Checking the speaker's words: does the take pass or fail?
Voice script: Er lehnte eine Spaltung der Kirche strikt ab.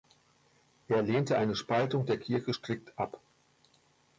pass